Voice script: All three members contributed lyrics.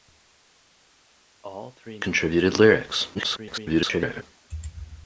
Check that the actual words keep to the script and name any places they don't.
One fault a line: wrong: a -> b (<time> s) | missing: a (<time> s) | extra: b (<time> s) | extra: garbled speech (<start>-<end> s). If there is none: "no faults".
missing: members (2.0 s)
extra: garbled speech (3.1-4.2 s)